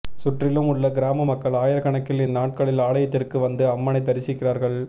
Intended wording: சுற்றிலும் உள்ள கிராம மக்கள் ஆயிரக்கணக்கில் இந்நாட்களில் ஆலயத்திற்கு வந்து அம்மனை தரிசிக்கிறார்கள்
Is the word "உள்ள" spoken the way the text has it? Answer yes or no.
yes